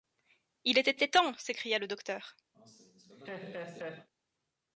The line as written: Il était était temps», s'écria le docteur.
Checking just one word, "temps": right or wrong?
right